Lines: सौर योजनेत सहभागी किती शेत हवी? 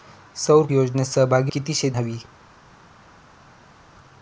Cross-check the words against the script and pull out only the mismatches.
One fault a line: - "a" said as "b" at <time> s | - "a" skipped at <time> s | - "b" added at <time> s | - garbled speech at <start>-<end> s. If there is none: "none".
none